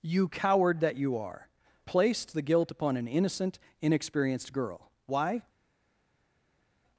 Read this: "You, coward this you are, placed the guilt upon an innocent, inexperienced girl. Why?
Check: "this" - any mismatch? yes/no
yes